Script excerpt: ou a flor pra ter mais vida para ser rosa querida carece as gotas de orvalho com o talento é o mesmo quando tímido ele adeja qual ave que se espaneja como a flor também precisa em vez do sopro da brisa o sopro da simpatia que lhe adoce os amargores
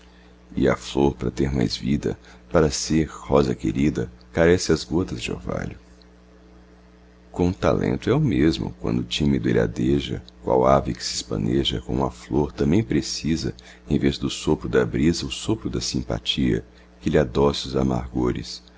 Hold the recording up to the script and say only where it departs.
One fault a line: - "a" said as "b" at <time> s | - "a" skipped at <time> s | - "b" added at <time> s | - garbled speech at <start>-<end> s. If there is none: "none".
- "ou" said as "e" at 0.6 s